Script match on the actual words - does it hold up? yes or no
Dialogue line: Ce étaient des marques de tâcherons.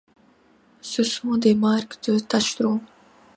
no